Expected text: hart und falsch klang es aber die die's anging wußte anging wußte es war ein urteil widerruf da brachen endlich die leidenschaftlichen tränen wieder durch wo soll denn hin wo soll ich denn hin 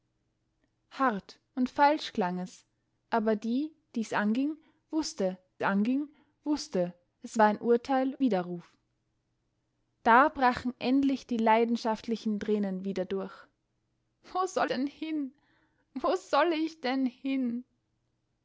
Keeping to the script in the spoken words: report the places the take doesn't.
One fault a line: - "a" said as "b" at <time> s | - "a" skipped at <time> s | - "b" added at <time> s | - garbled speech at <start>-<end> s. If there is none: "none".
none